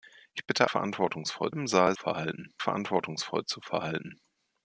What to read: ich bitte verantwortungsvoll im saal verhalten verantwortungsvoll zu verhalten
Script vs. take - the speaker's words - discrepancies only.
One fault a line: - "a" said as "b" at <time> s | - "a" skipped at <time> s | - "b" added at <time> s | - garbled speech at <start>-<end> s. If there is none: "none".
none